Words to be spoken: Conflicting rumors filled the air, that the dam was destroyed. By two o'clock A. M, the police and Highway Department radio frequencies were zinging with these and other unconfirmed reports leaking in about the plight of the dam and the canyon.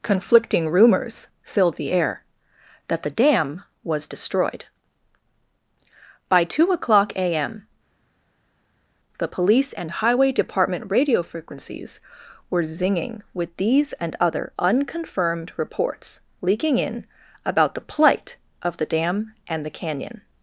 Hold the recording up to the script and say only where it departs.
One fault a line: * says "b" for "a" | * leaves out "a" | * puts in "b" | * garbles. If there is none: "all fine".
all fine